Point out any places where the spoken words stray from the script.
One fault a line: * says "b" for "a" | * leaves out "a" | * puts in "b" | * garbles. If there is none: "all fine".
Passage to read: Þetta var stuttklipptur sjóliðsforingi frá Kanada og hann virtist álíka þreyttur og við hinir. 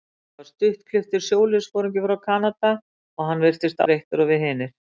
* leaves out "álíka"